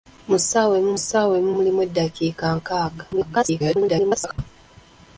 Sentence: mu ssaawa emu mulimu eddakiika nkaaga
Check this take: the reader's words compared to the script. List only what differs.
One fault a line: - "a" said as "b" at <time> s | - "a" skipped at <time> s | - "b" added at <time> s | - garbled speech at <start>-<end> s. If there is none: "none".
- "ssaawa emu" added at 1.0 s
- garbled speech at 3.1-4.4 s